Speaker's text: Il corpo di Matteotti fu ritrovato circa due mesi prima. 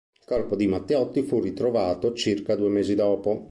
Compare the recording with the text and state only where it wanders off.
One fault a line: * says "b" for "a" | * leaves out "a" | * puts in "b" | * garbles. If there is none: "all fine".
* says "dopo" for "prima"